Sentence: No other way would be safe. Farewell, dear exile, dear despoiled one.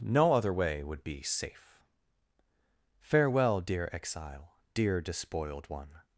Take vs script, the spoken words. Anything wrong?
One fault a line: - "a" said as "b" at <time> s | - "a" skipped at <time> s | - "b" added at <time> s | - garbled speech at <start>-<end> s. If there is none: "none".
none